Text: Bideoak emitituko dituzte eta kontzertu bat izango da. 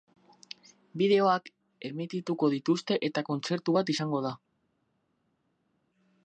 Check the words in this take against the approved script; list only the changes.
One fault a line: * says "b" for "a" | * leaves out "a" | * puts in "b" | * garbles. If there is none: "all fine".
all fine